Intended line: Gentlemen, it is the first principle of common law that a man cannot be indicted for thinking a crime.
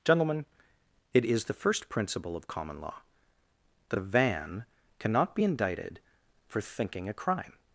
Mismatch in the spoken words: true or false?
true